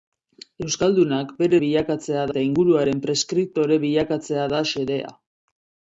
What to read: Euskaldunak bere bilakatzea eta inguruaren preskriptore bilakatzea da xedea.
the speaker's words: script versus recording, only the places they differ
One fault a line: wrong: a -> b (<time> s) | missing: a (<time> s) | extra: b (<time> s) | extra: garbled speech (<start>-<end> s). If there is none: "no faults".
no faults